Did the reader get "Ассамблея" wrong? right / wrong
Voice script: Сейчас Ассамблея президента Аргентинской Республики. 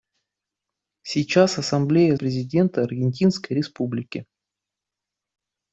right